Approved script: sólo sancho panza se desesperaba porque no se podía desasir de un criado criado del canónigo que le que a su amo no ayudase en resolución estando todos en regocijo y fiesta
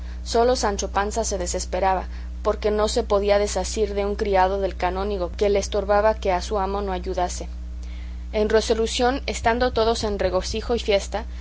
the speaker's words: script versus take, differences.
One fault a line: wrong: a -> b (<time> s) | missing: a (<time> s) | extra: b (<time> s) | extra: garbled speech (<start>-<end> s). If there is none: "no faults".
missing: criado (4.6 s)
extra: estorbaba (5.6 s)